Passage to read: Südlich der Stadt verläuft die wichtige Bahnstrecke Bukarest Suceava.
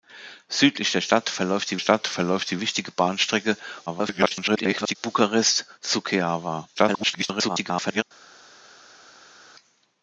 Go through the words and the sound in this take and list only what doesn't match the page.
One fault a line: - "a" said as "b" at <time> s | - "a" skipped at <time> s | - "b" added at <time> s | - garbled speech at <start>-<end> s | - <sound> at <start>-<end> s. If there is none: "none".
- "Stadt verläuft die" added at 1.8 s
- garbled speech at 3.9-5.0 s
- garbled speech at 6.7-8.0 s